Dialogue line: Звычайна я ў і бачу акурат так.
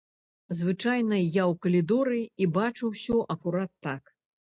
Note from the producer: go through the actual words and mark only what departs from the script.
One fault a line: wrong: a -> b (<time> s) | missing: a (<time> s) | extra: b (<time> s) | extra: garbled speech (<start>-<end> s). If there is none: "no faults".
extra: калідоры (1.6 s)
extra: ўсё (3.0 s)